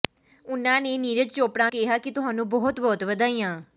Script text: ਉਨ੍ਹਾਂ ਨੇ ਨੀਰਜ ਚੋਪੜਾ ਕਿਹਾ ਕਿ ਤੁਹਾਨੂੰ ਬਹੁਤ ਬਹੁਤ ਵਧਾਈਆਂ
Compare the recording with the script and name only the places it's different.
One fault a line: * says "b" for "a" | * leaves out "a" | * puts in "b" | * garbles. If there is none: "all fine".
all fine